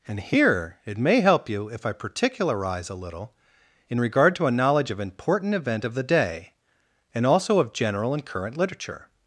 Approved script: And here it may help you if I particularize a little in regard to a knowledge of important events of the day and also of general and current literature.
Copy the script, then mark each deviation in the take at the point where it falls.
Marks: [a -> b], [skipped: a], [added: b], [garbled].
And here it may help you if I particularize a little in regard to a knowledge of important [events -> event] of the day and also of general and current literature.